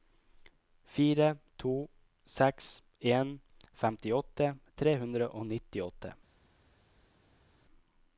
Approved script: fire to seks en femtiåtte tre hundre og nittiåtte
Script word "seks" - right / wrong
right